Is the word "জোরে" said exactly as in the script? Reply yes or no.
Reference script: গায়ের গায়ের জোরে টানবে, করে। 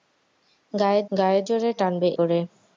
yes